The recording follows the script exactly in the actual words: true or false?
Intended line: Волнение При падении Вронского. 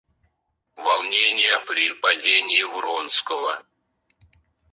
true